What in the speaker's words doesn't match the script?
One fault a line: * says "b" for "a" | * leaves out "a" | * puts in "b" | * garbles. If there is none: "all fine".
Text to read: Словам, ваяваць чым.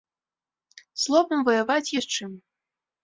* puts in "ёсць"